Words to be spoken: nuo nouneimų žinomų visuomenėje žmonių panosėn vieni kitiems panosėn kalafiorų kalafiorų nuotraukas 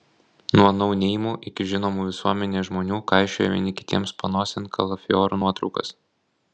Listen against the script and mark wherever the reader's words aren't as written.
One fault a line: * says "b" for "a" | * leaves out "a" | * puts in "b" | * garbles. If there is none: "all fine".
* puts in "iki"
* says "kaišioja" for "panosėn"
* leaves out "kalafiorų"